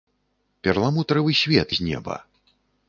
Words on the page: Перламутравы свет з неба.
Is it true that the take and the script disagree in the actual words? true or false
false